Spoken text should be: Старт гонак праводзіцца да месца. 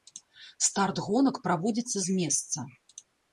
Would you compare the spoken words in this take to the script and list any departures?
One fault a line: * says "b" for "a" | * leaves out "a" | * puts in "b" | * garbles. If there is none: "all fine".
* says "з" for "да"